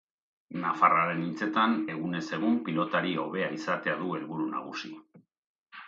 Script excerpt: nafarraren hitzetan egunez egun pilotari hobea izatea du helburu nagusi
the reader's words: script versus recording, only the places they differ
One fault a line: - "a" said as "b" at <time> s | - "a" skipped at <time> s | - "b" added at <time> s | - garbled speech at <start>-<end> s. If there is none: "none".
none